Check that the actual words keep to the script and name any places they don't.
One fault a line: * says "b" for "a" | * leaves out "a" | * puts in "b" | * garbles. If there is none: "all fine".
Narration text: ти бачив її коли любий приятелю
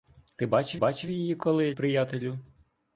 * puts in "бачив"
* leaves out "любий"